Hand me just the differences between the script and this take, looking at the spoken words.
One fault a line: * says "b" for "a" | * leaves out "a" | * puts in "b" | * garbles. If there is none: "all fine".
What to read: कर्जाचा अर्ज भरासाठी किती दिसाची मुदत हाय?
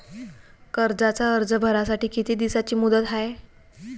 all fine